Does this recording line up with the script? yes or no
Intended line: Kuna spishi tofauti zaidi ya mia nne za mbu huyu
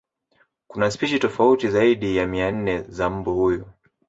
yes